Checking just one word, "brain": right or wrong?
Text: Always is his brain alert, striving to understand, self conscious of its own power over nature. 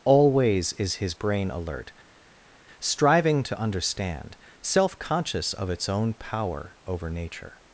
right